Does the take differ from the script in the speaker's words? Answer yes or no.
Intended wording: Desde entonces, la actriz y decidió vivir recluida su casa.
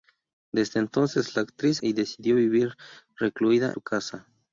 no